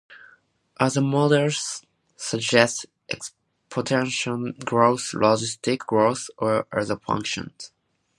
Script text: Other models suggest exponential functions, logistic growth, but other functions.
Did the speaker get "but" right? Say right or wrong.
wrong